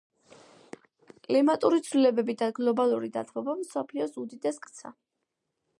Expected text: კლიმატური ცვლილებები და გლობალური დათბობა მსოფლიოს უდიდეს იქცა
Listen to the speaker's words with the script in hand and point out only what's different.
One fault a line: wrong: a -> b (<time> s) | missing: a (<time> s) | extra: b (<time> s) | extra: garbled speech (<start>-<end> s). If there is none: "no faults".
no faults